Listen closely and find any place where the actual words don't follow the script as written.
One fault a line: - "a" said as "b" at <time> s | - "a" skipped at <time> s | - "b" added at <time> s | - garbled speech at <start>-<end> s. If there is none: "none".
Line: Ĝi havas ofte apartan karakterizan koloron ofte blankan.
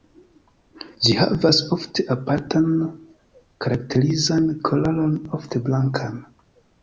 none